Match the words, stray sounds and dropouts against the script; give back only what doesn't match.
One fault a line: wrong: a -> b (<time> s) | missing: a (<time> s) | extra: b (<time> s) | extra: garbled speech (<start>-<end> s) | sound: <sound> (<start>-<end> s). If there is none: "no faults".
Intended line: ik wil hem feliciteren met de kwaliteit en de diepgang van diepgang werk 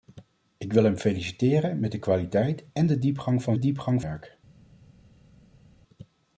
no faults